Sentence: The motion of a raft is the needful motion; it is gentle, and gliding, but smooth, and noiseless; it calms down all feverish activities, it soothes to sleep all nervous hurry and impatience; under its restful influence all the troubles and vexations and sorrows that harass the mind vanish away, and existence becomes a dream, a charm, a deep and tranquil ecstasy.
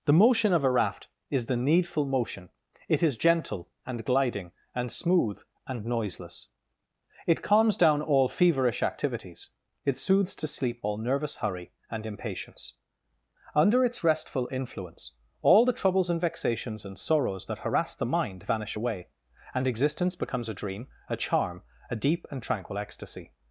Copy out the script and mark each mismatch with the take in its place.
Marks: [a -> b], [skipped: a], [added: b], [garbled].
The motion of a raft is the needful motion; it is gentle, and gliding, [but -> and] smooth, and noiseless; it calms down all feverish activities, it soothes to sleep all nervous hurry and impatience; under its restful influence all the troubles and vexations and sorrows that harass the mind vanish away, and existence becomes a dream, a charm, a deep and tranquil ecstasy.